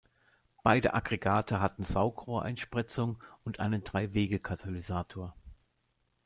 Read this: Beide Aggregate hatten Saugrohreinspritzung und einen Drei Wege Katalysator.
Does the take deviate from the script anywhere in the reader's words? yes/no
no